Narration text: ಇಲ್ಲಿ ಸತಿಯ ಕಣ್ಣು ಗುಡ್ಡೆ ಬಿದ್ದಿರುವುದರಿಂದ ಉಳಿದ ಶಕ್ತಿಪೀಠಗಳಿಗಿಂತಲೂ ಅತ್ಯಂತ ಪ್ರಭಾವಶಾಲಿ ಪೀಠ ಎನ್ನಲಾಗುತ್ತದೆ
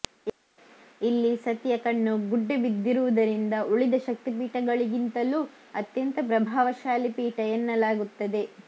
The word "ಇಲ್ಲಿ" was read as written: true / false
true